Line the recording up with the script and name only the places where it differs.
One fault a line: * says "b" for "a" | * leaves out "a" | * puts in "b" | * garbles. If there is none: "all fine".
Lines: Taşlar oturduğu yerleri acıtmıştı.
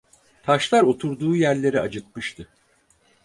all fine